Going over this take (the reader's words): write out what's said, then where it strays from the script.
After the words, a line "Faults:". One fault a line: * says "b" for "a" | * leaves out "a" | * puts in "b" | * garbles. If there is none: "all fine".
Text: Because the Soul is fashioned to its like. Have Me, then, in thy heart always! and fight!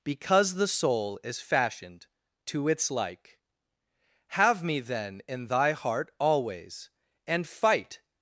Because the Soul is fashioned to its like. Have Me, then, in thy heart always! and fight!
Faults:
all fine